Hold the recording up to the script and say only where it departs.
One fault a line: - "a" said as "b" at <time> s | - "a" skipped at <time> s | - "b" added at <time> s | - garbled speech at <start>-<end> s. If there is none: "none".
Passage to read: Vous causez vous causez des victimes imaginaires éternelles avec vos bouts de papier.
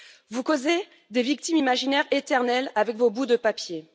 - "vous causez" skipped at 0.8 s